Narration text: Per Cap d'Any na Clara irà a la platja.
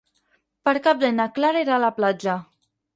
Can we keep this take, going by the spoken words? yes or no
yes